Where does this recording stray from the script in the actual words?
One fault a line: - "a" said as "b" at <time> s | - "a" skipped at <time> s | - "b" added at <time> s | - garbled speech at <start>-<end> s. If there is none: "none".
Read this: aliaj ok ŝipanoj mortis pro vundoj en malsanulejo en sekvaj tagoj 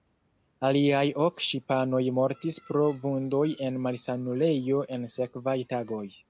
none